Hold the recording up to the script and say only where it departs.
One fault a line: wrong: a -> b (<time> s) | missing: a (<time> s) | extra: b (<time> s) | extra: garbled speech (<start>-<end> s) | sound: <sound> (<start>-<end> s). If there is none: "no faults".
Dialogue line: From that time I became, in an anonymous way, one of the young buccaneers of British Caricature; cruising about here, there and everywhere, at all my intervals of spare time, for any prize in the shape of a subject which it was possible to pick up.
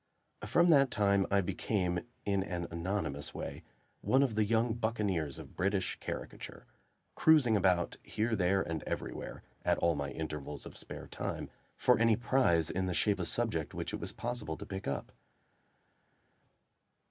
missing: of (13.2 s)